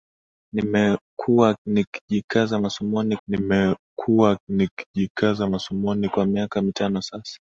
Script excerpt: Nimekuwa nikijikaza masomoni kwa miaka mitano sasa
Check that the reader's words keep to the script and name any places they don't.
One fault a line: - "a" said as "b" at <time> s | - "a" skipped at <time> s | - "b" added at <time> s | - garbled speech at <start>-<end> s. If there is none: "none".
- "nimekuwa nikijikaza masomoni" added at 3.3 s